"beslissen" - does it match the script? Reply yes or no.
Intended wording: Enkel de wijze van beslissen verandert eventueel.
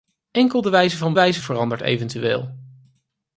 no